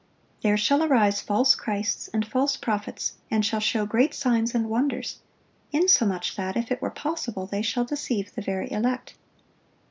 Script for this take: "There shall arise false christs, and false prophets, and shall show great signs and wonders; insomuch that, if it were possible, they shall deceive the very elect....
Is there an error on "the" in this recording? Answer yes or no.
no